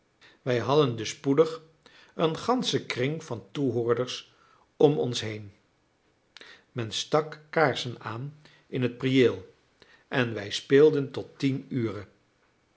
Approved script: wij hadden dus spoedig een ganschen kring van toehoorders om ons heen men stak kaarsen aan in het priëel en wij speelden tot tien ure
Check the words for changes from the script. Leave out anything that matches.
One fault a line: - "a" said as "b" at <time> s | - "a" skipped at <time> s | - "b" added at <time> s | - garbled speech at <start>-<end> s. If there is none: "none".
none